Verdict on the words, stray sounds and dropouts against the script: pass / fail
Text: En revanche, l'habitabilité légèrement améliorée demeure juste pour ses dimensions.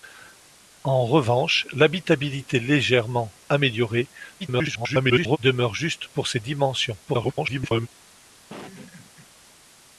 fail